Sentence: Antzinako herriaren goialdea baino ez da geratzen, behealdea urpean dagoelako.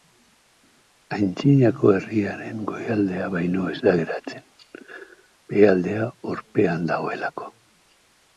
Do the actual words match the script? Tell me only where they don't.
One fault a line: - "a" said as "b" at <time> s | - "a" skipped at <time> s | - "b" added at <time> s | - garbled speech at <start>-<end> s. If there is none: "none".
none